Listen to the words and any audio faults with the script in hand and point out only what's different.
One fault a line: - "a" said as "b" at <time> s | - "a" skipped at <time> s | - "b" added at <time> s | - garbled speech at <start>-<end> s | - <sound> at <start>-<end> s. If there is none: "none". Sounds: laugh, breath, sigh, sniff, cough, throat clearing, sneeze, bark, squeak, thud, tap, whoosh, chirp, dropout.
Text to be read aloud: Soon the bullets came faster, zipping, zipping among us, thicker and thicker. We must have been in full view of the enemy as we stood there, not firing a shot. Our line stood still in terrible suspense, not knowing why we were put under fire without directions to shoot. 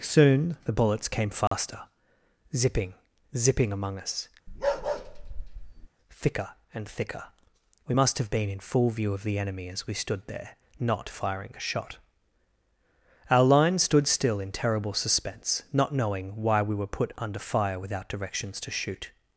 - dropout at 1.5-1.5 s
- bark at 4.5-5.9 s